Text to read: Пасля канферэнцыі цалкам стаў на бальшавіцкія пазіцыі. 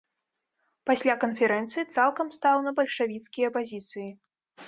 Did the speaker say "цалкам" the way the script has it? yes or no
yes